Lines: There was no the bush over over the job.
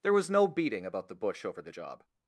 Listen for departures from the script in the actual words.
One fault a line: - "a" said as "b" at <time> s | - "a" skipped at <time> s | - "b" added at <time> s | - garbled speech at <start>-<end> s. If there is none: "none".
- "beating about" added at 0.5 s
- "over" skipped at 1.6 s